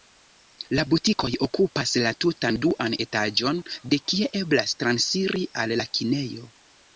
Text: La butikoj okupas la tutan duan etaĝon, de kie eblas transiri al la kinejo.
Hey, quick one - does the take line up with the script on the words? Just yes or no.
yes